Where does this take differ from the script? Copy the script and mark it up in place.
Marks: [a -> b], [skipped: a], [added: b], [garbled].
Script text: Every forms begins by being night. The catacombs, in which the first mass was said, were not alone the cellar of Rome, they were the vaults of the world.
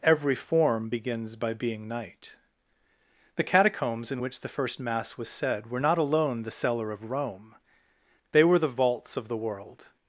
Every [forms -> form] begins by being night. The catacombs, in which the first mass was said, were not alone the cellar of Rome, they were the vaults of the world.